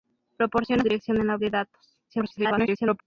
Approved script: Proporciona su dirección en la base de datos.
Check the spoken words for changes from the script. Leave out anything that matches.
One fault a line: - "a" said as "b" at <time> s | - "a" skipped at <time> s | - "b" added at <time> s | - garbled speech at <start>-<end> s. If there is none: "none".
- "su" skipped at 0.8 s
- "base" skipped at 1.4 s
- garbled speech at 2.1-3.0 s